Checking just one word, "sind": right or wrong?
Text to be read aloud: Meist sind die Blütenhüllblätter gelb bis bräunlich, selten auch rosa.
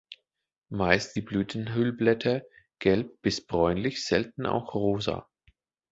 wrong